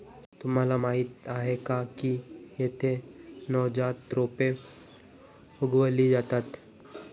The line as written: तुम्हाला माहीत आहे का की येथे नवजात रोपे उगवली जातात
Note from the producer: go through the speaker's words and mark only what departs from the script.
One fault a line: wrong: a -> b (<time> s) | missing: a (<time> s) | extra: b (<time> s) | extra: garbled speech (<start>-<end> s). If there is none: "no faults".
no faults